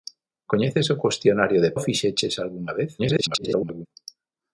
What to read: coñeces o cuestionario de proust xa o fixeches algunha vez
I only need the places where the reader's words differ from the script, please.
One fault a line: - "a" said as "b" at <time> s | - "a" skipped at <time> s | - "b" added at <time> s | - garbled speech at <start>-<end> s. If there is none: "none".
- "proust xa" skipped at 1.7 s
- garbled speech at 3.0-3.9 s